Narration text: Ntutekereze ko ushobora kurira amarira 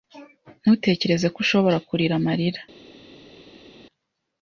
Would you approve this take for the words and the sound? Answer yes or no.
yes